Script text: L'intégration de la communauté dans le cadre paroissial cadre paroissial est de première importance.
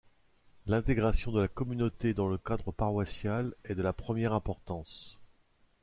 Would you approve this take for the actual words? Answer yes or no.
no